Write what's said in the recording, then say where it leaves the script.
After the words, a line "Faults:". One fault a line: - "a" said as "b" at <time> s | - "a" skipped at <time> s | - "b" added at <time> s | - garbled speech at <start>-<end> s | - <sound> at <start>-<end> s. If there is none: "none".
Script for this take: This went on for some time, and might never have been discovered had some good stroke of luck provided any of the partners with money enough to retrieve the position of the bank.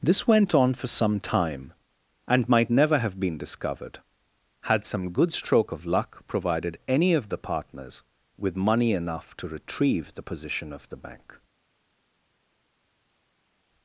This went on for some time, and might never have been discovered had some good stroke of luck provided any of the partners with money enough to retrieve the position of the bank.
Faults:
none